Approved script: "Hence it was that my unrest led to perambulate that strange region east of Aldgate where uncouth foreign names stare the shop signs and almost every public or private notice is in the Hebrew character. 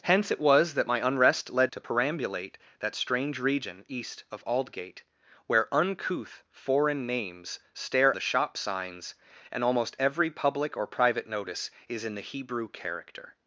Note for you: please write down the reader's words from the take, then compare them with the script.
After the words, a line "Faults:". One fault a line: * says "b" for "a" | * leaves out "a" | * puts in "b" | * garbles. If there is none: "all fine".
"Hence it was that my unrest led to perambulate that strange region east of Aldgate where uncouth foreign names stare the shop signs and almost every public or private notice is in the Hebrew character.
Faults:
all fine